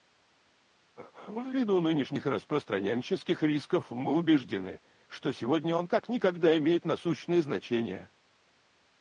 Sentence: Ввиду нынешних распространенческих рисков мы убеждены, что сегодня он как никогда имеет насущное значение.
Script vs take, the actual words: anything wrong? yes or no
no